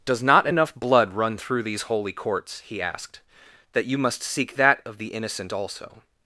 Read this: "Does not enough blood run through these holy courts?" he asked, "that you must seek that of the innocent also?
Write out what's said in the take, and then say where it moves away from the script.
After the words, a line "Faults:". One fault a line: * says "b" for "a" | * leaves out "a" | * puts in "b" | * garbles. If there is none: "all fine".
"Does not enough blood run through these holy courts?" he asked, "that you must seek that of the innocent also?
Faults:
all fine